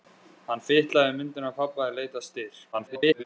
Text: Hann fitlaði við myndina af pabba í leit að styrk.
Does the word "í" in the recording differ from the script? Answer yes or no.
no